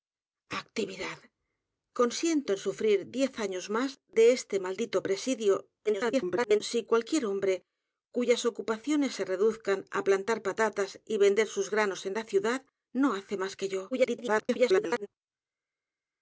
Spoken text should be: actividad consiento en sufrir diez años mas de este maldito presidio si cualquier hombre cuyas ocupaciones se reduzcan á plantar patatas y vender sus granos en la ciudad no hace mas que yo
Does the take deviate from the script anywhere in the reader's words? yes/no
yes